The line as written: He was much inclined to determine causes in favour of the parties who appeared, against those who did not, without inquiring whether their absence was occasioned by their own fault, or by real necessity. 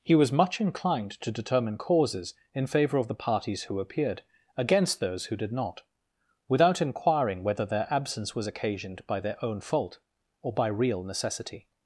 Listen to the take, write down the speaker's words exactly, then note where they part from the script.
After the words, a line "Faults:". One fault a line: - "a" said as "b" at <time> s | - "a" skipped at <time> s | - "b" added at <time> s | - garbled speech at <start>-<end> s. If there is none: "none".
He was much inclined to determine causes in favour of the parties who appeared, against those who did not, without inquiring whether their absence was occasioned by their own fault, or by real necessity.
Faults:
none